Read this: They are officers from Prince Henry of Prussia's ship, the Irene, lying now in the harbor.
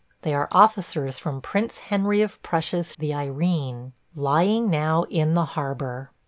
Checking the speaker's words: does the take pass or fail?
fail